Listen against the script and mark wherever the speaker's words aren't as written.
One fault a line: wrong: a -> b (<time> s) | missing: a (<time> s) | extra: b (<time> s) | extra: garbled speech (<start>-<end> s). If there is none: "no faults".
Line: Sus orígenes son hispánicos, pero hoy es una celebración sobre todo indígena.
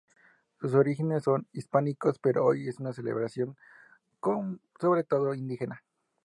no faults